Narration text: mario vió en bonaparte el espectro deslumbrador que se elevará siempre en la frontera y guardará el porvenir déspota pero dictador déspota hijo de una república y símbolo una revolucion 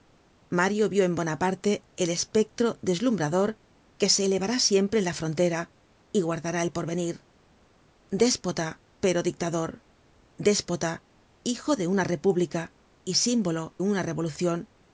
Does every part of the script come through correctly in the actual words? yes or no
yes